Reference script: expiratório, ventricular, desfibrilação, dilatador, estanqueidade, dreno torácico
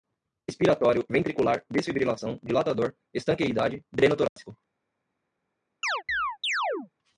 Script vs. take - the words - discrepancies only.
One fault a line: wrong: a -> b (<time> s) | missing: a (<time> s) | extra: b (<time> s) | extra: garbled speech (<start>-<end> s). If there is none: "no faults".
no faults